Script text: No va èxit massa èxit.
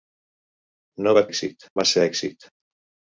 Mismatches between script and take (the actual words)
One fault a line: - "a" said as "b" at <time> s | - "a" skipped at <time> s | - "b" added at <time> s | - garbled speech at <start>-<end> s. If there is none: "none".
none